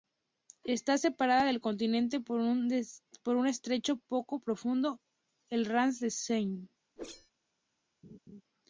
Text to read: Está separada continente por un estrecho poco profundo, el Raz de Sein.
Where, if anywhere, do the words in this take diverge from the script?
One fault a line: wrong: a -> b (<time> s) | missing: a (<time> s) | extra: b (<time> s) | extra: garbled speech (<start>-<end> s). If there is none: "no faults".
extra: del (1.4 s)